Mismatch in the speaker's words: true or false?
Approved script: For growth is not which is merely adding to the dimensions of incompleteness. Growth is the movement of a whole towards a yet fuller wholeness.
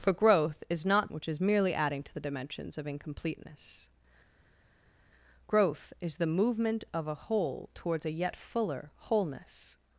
false